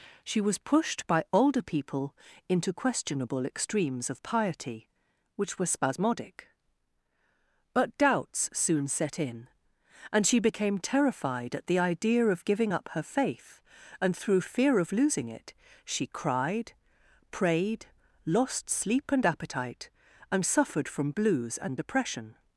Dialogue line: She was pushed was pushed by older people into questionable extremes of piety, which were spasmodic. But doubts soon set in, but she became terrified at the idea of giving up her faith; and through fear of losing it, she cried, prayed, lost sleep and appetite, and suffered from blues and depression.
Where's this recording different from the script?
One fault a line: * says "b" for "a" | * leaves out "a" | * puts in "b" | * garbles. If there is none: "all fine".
* leaves out "was pushed"
* says "and" for "but"